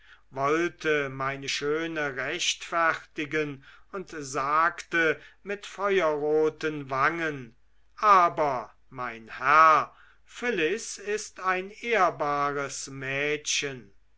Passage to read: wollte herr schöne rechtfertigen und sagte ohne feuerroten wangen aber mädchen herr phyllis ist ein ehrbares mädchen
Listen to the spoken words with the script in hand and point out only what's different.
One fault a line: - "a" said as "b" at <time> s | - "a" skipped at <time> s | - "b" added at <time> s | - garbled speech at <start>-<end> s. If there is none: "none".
- "herr" said as "meine" at 1.1 s
- "ohne" said as "mit" at 5.4 s
- "mädchen" said as "mein" at 8.9 s